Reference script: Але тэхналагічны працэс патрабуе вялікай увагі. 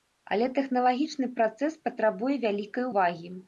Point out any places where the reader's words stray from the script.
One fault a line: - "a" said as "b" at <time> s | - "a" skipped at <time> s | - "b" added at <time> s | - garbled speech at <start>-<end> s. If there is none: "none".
none